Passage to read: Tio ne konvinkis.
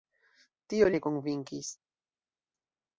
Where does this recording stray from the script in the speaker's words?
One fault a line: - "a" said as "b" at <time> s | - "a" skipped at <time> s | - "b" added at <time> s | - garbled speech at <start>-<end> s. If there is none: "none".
none